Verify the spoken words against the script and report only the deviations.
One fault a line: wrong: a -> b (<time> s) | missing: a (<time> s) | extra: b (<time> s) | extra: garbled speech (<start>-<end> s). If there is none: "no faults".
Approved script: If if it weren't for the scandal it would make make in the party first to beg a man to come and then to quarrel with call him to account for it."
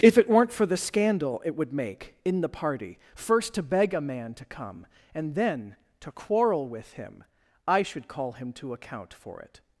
missing: if (0.2 s)
missing: make (2.1 s)
extra: him I should (6.9 s)